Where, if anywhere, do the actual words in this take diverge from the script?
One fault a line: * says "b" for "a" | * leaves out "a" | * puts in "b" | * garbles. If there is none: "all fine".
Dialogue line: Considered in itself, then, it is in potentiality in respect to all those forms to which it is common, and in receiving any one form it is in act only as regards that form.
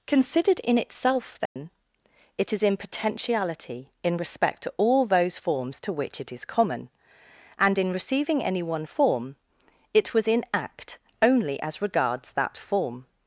* says "was" for "is"